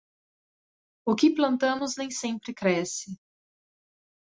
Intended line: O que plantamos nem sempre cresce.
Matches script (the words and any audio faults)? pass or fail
pass